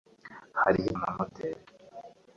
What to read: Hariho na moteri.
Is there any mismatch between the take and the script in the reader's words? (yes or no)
no